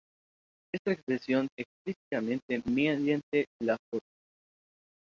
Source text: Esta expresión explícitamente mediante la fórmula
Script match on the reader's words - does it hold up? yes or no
yes